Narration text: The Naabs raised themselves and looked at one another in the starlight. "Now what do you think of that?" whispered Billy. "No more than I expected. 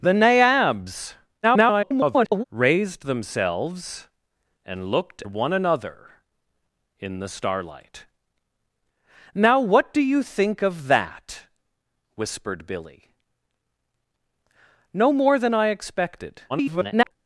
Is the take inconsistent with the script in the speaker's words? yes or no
yes